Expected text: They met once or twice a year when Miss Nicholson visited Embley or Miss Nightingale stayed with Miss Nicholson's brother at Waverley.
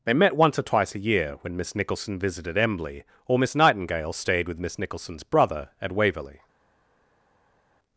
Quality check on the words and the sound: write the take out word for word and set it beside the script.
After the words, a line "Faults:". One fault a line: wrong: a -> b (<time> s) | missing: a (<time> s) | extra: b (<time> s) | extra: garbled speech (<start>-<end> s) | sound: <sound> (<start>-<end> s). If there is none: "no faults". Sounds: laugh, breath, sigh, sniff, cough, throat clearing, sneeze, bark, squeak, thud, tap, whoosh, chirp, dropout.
They met once or twice a year when Miss Nicholson visited Embley or Miss Nightingale stayed with Miss Nicholson's brother at Waverley.
Faults:
no faults